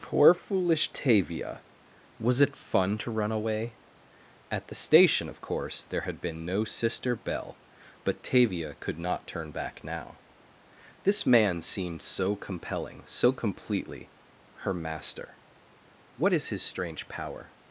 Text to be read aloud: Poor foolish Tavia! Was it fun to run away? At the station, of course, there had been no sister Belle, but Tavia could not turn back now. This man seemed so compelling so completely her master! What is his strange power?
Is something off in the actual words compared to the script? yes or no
no